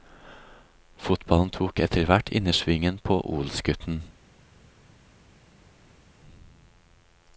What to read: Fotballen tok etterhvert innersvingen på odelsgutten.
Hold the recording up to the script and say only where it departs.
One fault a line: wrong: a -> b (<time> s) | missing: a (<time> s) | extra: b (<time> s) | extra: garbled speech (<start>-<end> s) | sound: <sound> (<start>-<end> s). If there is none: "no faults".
no faults